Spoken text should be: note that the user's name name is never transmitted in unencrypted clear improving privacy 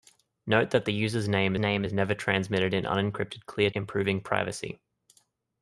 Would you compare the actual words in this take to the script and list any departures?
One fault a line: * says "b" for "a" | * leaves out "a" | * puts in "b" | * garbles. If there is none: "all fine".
all fine